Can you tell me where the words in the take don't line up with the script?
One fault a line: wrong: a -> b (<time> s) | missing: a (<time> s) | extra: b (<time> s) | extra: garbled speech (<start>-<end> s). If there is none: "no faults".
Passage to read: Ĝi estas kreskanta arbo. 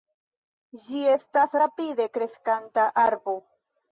extra: rapide (1.6 s)